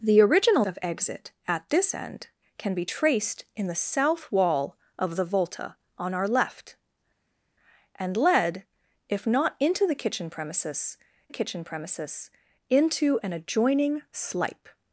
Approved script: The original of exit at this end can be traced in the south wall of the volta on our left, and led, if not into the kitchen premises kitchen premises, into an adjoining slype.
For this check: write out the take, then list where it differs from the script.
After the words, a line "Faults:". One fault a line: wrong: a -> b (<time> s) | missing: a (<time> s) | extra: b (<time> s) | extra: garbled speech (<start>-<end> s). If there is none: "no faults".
The original of exit at this end can be traced in the south wall of the volta on our left, and led, if not into the kitchen premises kitchen premises, into an adjoining slype.
Faults:
no faults